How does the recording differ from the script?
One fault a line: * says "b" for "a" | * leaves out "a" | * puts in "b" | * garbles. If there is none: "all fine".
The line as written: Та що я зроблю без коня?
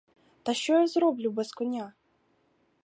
all fine